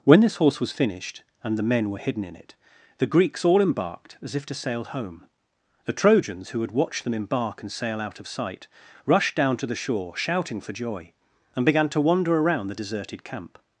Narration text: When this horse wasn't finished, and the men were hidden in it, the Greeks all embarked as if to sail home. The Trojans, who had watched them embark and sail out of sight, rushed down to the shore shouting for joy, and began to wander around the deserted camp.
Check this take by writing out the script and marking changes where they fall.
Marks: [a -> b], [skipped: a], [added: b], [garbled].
When this horse [wasn't -> was] finished, and the men were hidden in it, the Greeks all embarked as if to sail home. The Trojans, who had watched them embark and sail out of sight, rushed down to the shore shouting for joy, and began to wander around the deserted camp.